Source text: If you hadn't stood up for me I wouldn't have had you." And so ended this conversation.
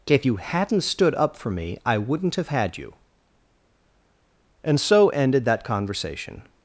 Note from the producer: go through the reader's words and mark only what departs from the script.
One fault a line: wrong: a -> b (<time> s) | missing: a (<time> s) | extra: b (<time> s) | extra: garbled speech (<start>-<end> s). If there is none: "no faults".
wrong: this -> that (5.5 s)